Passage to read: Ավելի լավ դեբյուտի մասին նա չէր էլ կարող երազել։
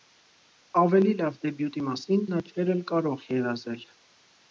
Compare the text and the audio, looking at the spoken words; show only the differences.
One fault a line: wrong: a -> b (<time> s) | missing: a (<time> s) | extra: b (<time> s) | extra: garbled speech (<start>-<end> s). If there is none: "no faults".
no faults